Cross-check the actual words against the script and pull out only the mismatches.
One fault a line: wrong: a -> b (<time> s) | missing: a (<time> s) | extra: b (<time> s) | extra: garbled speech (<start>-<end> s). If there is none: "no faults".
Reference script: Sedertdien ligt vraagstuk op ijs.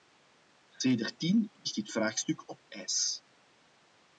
extra: dit (1.7 s)